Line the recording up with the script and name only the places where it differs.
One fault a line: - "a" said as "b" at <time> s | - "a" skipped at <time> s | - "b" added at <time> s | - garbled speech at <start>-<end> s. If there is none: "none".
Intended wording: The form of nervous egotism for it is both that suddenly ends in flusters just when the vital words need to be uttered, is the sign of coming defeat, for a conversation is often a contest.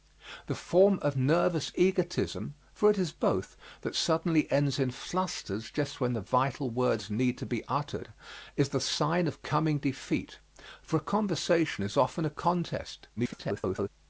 - garbled speech at 13.2-13.9 s